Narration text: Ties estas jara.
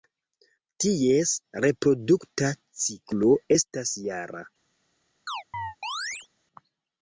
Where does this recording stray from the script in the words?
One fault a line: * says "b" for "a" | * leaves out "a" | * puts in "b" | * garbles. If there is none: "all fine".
* puts in "reprodukta ciklo"